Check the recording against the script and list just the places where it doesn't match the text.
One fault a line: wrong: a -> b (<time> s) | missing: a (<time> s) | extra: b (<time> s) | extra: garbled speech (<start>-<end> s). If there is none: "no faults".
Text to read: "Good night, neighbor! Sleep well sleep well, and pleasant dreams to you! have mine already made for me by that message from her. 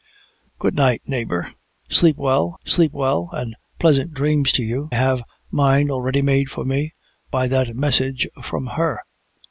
no faults